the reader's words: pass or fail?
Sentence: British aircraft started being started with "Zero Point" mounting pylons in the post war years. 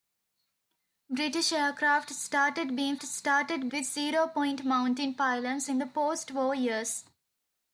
pass